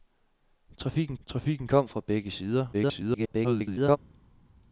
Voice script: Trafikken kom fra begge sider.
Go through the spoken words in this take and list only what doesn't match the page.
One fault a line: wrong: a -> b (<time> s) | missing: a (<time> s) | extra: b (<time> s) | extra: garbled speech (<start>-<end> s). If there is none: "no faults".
extra: trafikken (1.3 s)
extra: garbled speech (2.7-4.0 s)